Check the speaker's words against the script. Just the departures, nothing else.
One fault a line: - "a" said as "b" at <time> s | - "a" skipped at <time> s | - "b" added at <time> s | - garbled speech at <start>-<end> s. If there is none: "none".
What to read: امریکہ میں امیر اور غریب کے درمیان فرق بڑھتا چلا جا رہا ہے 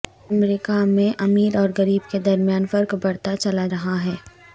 - "جا" skipped at 3.7 s